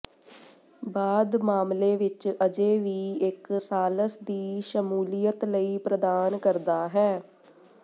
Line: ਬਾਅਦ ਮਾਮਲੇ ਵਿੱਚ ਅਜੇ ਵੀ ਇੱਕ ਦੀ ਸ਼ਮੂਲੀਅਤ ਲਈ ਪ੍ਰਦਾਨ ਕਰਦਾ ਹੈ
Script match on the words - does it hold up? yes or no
no